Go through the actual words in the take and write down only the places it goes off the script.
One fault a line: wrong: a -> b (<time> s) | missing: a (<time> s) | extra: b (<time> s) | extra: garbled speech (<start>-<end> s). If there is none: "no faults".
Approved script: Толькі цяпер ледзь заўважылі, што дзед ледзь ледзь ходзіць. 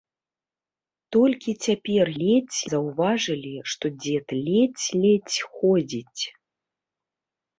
no faults